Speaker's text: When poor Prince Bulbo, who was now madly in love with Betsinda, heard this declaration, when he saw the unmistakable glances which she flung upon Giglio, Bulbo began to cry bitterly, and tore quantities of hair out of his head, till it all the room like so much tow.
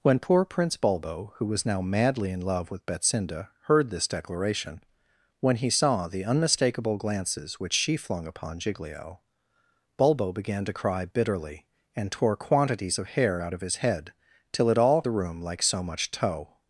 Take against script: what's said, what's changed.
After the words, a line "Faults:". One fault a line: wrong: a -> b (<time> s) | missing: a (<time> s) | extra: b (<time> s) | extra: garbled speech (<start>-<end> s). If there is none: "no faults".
When poor Prince Bulbo, who was now madly in love with Betsinda, heard this declaration, when he saw the unmistakable glances which she flung upon Giglio, Bulbo began to cry bitterly, and tore quantities of hair out of his head, till it all the room like so much tow.
Faults:
no faults